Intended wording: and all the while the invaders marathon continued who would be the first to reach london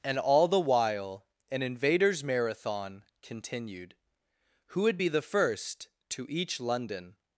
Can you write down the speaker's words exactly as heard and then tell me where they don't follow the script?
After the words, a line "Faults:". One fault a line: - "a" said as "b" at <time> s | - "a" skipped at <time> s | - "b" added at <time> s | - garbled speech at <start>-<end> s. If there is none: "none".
and all the while an invaders marathon continued who would be the first to each london
Faults:
- "the" said as "an" at 1.5 s
- "reach" said as "each" at 6.3 s